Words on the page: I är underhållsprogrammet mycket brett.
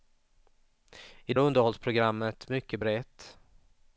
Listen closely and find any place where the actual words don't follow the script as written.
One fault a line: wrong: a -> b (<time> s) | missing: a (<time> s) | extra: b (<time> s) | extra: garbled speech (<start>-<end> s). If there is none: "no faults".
no faults